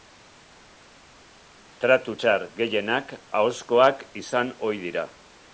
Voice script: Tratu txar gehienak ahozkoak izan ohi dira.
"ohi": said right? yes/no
yes